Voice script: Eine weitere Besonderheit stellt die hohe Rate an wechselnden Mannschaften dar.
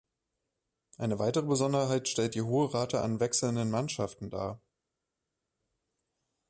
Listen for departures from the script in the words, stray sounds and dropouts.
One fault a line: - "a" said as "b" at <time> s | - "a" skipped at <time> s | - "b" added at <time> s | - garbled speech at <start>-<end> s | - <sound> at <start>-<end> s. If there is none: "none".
none